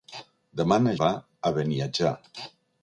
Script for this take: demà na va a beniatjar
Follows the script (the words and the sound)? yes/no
yes